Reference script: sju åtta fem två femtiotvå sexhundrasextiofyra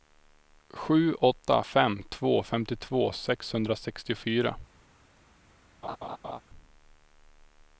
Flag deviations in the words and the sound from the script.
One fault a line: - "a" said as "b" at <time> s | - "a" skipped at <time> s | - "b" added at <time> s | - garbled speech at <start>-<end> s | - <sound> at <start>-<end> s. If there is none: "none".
- laugh at 5.8-6.4 s